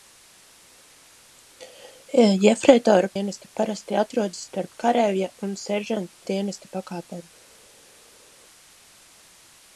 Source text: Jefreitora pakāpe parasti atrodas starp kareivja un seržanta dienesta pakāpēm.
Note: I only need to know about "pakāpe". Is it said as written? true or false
false